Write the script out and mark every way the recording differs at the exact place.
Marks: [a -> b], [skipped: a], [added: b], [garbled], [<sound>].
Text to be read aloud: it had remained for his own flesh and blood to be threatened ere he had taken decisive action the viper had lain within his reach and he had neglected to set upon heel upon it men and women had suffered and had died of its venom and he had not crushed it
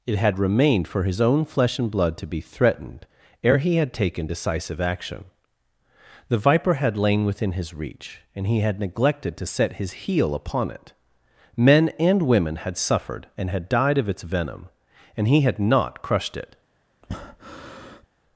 it had remained for his own flesh and blood to be threatened ere he had taken decisive action the viper had lain within his reach and he had neglected to set [upon -> his] heel upon it men and women had suffered and had died of its venom and he had not crushed it [breath]